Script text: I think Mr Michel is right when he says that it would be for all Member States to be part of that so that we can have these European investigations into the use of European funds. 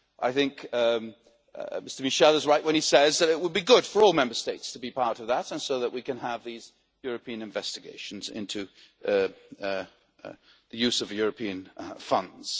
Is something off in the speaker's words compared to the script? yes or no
yes